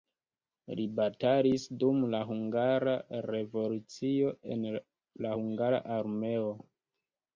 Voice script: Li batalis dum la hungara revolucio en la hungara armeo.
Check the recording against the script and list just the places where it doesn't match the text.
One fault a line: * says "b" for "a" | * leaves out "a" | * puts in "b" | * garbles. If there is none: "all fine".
all fine